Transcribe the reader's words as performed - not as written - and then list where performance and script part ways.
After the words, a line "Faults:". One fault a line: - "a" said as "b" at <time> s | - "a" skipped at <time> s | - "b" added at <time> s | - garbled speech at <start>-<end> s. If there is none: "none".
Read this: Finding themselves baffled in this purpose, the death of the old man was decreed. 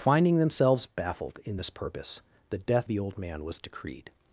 Finding themselves baffled in this purpose, the death the old man was decreed.
Faults:
- "of" skipped at 2.9 s